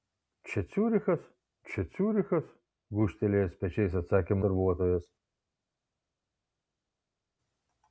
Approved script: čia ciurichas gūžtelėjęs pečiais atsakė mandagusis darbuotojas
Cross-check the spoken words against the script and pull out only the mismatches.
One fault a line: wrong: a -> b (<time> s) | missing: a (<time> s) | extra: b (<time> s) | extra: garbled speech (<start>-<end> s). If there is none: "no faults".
extra: čia ciurichas (1.7 s)
missing: mandagusis (4.4 s)